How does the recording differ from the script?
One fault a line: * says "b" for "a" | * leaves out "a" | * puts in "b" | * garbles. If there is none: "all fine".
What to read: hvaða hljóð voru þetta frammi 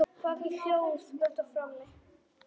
* leaves out "voru"